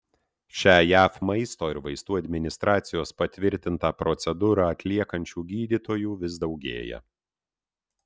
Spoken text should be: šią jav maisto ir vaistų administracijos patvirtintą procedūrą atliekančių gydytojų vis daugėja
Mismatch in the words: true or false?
false